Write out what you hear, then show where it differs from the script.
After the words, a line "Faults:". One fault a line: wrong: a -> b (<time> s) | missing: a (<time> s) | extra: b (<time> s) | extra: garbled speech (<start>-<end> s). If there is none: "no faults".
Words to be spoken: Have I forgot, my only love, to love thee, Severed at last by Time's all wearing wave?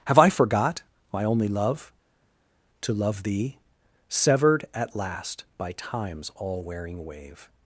Have I forgot, my only love, to love thee, Severed at last by Time's all wearing wave?
Faults:
no faults